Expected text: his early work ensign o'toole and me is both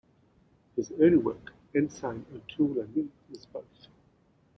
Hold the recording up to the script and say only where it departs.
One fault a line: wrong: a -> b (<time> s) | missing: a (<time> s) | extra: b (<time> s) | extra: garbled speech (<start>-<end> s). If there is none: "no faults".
no faults